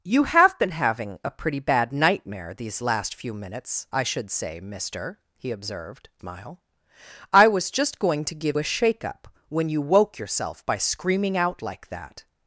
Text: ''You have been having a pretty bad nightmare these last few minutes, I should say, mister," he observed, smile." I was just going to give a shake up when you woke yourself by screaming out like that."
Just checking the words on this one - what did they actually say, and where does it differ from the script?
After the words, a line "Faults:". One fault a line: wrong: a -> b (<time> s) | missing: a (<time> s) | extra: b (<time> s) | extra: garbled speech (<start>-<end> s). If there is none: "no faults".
''You have been having a pretty bad nightmare these last few minutes, I should say, mister," he observed, smile." I was just going to give a shake up when you woke yourself by screaming out like that."
Faults:
no faults